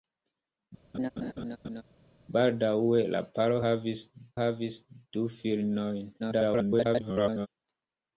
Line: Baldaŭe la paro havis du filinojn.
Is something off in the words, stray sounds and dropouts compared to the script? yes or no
yes